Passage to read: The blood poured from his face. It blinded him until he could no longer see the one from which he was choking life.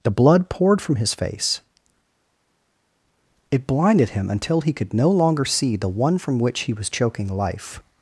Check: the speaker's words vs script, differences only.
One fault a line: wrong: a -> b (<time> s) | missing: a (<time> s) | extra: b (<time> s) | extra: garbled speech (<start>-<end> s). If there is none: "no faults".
no faults